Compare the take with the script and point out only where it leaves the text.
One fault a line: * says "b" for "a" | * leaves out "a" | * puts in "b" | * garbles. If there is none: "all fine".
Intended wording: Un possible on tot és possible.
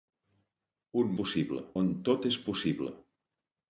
all fine